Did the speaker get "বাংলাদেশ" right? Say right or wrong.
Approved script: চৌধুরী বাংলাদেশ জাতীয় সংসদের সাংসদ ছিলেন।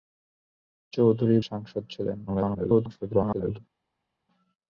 wrong